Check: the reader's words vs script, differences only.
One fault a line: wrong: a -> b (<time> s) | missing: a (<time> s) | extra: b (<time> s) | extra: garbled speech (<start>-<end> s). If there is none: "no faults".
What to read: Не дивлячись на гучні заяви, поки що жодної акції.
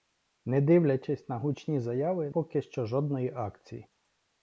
no faults